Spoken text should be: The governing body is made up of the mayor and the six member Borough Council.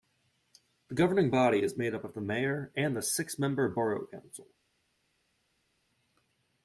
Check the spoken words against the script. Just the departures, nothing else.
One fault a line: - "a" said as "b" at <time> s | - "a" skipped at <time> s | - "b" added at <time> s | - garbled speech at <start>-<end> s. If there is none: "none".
none